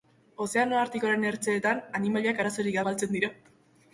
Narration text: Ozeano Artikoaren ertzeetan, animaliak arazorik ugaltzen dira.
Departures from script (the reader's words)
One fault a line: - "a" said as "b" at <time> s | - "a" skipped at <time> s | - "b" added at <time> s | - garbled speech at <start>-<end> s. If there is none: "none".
none